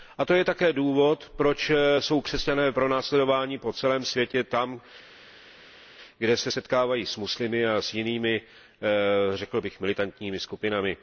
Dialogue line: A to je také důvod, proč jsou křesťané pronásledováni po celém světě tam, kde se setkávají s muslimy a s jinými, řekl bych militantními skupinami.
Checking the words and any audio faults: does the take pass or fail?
pass